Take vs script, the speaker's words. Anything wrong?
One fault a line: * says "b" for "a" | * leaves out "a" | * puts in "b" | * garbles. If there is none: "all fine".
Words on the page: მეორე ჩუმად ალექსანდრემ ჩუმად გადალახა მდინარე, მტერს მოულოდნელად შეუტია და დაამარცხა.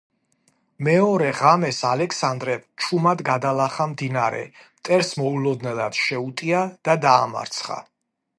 * says "ღამეს" for "ჩუმად"